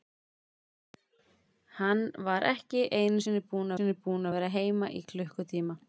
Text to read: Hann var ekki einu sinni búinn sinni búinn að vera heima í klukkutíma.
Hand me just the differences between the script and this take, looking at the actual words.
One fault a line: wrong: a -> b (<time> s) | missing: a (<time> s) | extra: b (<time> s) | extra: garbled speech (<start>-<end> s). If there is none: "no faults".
no faults